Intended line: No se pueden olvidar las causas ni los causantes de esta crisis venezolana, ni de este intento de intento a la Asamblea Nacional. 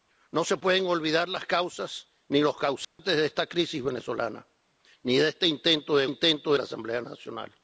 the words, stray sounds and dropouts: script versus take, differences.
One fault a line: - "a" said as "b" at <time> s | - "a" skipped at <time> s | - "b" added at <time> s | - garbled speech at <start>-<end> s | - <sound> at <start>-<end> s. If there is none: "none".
- dropout at 2.8-3.0 s